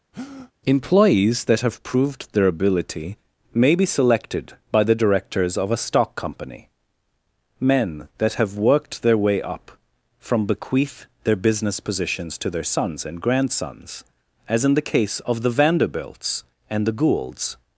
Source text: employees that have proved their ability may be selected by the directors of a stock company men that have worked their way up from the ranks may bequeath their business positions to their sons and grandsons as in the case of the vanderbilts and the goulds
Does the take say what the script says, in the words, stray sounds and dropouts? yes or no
no